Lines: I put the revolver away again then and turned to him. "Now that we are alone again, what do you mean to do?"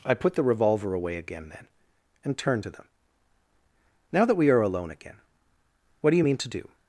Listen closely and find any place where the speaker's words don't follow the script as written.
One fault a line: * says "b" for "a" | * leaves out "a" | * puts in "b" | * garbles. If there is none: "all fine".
* says "them" for "him"